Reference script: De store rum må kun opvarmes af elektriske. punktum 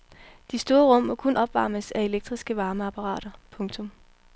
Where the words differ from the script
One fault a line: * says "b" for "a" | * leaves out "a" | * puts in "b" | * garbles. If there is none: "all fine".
* puts in "varmeapparater"